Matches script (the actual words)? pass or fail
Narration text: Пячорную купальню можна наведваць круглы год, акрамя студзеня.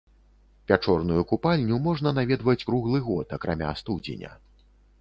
pass